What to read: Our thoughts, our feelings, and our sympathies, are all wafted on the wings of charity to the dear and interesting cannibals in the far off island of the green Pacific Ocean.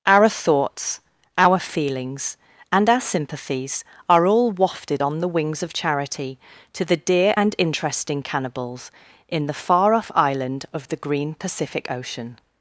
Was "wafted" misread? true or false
false